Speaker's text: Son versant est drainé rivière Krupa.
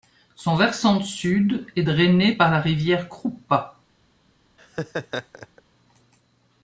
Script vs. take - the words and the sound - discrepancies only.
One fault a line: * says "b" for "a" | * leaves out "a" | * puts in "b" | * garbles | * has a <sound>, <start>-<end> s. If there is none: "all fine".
* puts in "sud"
* puts in "par la"
* has a laugh, 4.6-5.6 s